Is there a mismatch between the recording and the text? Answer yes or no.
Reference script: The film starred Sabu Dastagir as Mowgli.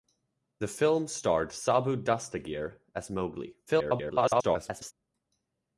yes